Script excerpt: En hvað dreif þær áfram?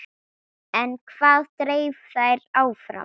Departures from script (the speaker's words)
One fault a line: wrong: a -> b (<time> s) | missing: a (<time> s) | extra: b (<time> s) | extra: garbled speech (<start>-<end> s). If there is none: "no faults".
no faults